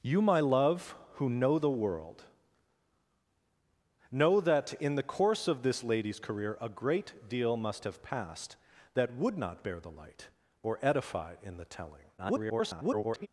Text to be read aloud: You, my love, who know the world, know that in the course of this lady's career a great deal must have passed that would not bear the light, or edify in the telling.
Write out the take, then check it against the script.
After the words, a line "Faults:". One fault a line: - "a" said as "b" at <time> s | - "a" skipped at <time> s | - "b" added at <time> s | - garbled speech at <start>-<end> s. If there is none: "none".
You, my love, who know the world, know that in the course of this lady's career a great deal must have passed that would not bear the light, or edify in the telling. [garbled]
Faults:
- garbled speech at 12.2-13.3 s